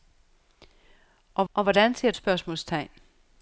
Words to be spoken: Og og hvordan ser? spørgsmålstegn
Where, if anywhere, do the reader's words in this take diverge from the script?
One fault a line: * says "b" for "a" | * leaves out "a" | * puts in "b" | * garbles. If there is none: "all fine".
all fine